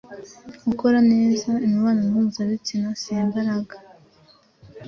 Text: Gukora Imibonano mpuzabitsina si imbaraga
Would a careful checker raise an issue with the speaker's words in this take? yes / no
yes